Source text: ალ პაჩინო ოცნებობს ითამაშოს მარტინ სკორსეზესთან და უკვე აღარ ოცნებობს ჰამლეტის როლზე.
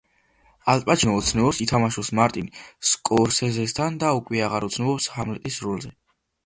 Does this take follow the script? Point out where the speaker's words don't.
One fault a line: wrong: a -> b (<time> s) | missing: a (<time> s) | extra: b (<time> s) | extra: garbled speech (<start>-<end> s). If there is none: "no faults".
no faults